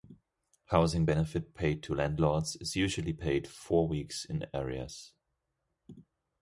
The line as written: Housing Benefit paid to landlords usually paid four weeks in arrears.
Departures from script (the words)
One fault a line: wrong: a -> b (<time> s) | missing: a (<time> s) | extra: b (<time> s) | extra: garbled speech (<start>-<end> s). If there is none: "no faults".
extra: is (2.6 s)